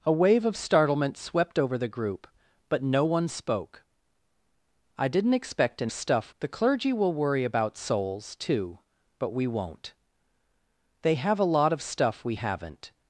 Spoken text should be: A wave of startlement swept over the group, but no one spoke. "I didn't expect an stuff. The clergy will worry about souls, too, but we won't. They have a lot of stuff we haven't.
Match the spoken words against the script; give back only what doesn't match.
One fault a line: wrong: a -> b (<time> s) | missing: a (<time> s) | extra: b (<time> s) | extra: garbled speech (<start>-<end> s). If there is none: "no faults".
no faults